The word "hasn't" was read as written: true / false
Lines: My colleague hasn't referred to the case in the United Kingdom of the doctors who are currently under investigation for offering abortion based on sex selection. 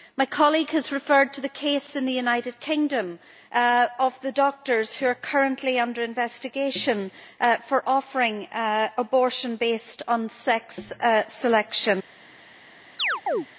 false